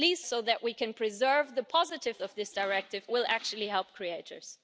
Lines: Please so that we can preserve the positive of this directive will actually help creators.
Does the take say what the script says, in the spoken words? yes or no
yes